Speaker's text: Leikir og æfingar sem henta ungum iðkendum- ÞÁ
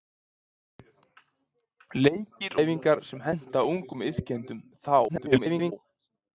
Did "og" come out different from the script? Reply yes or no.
yes